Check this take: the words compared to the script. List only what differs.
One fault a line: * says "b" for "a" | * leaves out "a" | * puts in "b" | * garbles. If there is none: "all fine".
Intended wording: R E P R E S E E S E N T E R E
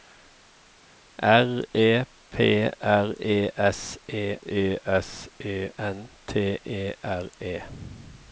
all fine